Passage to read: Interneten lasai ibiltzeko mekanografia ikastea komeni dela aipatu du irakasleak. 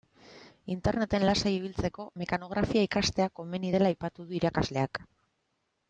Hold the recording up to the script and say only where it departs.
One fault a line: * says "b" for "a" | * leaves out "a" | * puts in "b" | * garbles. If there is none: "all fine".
all fine